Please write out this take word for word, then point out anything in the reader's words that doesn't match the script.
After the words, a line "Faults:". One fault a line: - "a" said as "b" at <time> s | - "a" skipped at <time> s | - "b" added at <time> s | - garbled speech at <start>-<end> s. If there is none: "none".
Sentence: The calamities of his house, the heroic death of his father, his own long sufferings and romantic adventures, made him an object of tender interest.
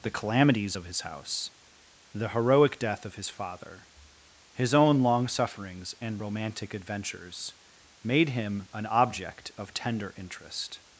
The calamities of his house, the heroic death of his father, his own long sufferings and romantic adventures, made him an object of tender interest.
Faults:
none